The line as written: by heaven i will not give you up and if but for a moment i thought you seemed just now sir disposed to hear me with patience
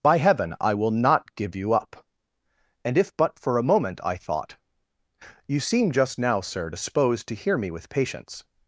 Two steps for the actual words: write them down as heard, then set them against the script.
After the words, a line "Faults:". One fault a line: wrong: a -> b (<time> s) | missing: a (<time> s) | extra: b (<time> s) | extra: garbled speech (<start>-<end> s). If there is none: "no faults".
by heaven i will not give you up and if but for a moment i thought you seem just now sir disposed to hear me with patience
Faults:
wrong: seemed -> seem (5.6 s)